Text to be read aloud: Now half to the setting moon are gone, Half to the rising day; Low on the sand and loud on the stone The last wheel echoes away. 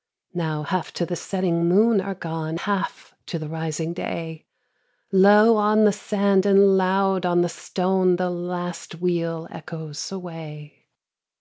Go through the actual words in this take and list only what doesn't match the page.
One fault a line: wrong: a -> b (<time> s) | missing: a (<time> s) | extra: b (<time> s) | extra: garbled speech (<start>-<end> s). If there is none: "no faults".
no faults